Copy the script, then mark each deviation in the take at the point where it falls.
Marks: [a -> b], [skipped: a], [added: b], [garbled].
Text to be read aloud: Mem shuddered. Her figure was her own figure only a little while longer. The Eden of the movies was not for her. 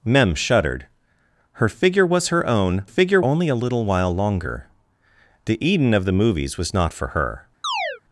Mem shuddered. Her figure was her own figure only a little while longer. The Eden of the movies was not for her.